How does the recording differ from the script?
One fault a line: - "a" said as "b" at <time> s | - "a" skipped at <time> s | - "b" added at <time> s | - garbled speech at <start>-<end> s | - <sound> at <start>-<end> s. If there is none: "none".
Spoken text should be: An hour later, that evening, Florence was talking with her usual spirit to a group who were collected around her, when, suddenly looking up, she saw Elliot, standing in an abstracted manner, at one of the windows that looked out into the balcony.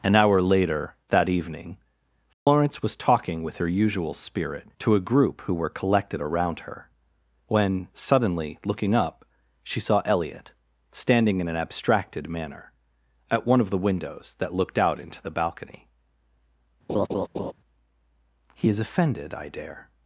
- dropout at 2.3-2.5 s
- laugh at 16.9-17.5 s
- "He is offended I dare" added at 18.6 s